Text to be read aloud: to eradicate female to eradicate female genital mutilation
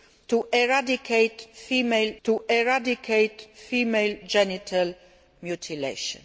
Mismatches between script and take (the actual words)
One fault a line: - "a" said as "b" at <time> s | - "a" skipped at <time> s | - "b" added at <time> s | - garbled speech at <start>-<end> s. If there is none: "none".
none